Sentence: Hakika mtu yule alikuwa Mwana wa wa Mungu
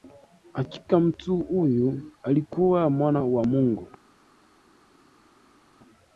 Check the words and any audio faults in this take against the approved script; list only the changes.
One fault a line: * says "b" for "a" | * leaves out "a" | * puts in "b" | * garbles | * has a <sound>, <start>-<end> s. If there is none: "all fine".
* says "huyu" for "yule"
* leaves out "wa"